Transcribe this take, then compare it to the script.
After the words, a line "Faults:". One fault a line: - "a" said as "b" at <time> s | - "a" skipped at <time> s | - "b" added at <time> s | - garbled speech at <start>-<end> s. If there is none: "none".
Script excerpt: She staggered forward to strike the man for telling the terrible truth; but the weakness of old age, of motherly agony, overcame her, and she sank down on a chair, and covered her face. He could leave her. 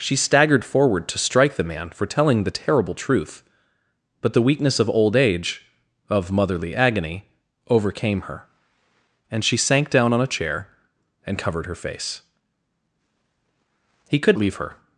She staggered forward to strike the man for telling the terrible truth; but the weakness of old age, of motherly agony, overcame her, and she sank down on a chair, and covered her face. He could leave her.
Faults:
none